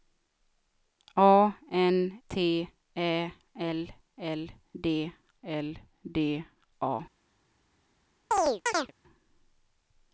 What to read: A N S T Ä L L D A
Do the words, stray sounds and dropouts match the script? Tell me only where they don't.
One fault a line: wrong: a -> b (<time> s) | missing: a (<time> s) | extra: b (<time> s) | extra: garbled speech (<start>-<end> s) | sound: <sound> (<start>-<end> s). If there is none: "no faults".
missing: S (2.2 s)
extra: L D (5.4 s)
sound: chirp (8.3-8.9 s)